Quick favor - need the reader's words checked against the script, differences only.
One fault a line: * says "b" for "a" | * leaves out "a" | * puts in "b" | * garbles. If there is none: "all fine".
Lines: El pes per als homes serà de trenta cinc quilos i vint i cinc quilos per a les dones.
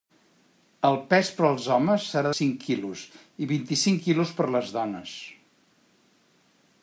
* leaves out "de trenta"